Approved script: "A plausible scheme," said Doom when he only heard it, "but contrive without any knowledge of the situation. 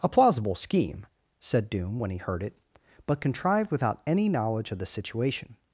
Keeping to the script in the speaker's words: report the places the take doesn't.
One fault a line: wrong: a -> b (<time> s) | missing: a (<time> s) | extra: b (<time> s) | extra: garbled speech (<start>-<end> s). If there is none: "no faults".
missing: only (2.2 s)
wrong: contrive -> contrived (3.2 s)